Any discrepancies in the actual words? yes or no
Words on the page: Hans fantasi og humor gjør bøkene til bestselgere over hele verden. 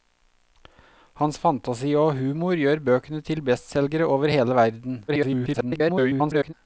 yes